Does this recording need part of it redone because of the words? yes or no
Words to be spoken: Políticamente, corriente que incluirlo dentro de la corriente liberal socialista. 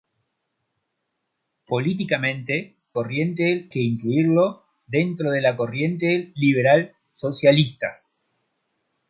no